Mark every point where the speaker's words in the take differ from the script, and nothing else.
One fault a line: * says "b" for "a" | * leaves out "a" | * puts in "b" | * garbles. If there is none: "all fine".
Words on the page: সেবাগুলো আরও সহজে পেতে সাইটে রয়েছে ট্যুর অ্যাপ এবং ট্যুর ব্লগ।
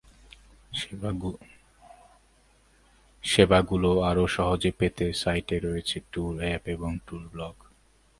all fine